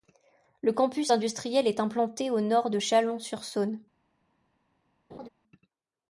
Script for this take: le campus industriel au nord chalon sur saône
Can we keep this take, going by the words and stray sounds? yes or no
no